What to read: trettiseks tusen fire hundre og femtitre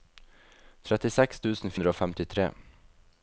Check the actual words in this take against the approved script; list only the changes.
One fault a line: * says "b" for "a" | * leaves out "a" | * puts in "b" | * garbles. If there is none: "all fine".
* leaves out "fire"